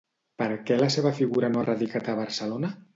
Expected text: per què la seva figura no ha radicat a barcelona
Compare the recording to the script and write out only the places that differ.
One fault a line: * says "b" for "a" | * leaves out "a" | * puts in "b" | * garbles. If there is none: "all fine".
all fine